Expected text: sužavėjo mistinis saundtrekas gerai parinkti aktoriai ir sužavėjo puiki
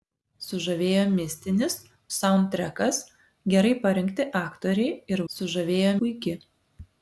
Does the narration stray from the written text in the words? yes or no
no